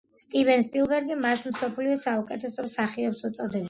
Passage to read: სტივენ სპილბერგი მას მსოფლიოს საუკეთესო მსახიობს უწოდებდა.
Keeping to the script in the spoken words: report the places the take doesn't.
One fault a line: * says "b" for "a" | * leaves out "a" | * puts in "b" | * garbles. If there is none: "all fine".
all fine